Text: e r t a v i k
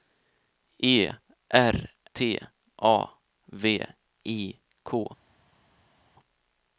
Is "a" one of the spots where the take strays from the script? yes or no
no